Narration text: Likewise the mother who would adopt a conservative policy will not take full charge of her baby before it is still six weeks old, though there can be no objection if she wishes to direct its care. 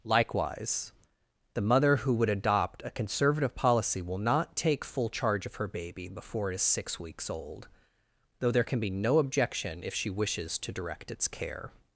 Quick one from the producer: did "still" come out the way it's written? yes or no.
no